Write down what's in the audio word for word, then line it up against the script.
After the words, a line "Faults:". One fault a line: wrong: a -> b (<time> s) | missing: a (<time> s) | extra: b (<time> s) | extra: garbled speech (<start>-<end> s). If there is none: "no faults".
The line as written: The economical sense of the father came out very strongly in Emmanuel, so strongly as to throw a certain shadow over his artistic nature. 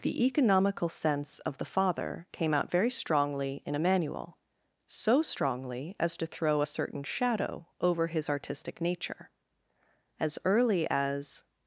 The economical sense of the father came out very strongly in Emmanuel, so strongly as to throw a certain shadow over his artistic nature. As early as
Faults:
extra: As early as (10.2 s)